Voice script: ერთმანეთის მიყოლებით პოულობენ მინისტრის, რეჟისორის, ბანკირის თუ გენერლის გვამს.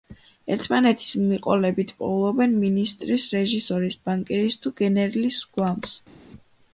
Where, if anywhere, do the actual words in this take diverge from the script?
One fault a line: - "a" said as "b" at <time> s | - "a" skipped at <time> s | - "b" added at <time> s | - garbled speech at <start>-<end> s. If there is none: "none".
none